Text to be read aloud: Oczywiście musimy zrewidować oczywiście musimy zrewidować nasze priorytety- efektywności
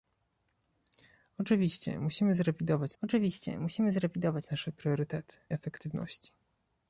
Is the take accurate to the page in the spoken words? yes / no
yes